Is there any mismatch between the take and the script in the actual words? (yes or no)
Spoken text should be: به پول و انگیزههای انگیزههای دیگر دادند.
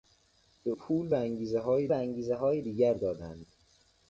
no